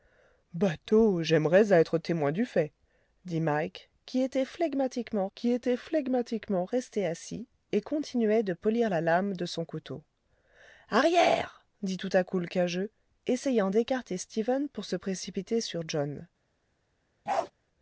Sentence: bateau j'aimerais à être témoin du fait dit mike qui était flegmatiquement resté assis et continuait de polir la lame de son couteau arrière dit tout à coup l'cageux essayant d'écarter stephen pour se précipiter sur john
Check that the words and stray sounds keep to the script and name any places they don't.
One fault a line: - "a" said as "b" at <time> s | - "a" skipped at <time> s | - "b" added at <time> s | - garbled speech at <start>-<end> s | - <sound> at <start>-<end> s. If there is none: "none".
- "qui était flegmatiquement" added at 5.3 s
- bark at 17.3-17.5 s